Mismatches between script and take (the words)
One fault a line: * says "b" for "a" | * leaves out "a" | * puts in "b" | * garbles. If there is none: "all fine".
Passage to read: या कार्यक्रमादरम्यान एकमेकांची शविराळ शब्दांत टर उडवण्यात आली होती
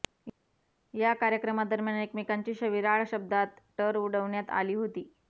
all fine